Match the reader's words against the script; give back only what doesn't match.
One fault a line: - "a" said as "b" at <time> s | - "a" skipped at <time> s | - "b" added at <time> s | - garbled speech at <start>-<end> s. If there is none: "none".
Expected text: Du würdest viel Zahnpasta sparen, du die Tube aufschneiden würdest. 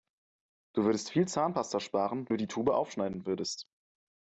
none